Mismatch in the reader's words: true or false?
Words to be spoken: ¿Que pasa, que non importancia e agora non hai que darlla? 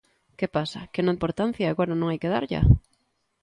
false